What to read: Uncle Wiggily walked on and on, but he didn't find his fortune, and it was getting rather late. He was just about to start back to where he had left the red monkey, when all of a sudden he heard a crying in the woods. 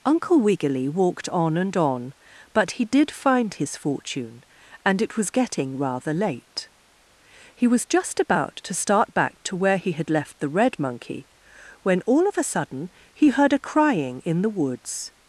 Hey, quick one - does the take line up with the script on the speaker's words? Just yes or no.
no